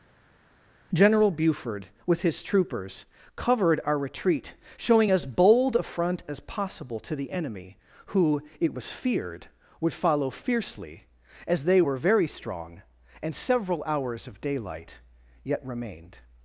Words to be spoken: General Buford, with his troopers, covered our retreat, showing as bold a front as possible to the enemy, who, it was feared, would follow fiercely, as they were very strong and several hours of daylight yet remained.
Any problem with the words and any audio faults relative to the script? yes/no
no